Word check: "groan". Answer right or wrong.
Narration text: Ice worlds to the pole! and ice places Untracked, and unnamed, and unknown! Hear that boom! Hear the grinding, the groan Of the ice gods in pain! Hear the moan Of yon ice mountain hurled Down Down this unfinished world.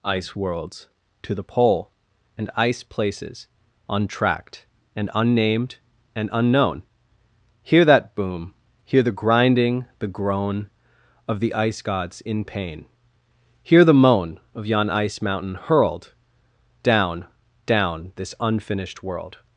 right